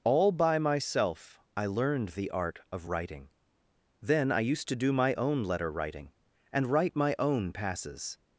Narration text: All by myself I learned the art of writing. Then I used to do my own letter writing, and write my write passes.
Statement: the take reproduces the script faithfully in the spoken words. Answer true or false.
false